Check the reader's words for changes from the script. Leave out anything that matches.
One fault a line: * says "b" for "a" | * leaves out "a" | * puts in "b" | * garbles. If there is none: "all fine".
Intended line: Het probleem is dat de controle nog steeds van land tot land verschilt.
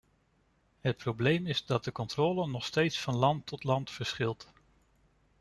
all fine